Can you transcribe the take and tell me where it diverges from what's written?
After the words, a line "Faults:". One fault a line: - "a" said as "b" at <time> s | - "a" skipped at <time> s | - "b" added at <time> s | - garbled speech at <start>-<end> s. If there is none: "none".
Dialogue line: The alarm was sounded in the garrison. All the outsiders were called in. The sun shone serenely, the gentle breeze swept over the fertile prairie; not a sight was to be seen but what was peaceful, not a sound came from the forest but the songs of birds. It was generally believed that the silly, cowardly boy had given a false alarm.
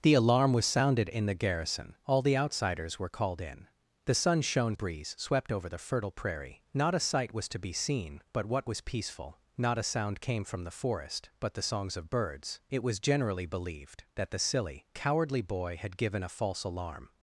The alarm was sounded in the garrison. All the outsiders were called in. The sun shone breeze swept over the fertile prairie; not a sight was to be seen but what was peaceful, not a sound came from the forest but the songs of birds. It was generally believed that the silly, cowardly boy had given a false alarm.
Faults:
- "serenely the gentle" skipped at 4.8 s